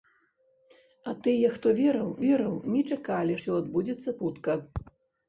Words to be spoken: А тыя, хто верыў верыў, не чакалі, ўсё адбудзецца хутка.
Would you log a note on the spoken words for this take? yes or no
no